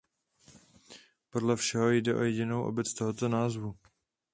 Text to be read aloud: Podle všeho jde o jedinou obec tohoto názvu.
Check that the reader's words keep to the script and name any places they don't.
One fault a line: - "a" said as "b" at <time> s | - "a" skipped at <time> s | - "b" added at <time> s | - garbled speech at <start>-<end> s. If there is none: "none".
none